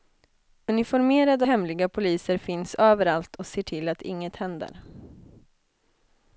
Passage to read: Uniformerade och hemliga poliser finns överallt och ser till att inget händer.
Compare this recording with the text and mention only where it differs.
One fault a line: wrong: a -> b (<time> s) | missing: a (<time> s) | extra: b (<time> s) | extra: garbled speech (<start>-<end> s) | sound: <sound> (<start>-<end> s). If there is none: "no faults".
missing: och (1.4 s)